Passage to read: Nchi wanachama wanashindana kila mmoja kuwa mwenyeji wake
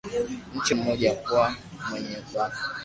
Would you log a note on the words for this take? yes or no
yes